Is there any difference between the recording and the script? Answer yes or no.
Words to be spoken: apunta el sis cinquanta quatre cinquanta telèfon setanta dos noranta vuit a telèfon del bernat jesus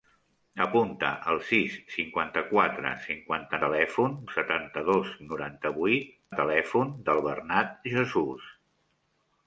no